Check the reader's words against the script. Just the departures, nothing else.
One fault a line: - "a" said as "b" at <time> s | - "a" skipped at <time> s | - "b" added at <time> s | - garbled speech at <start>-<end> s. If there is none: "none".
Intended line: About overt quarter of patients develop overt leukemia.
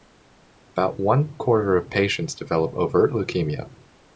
- "overt" said as "one" at 1.0 s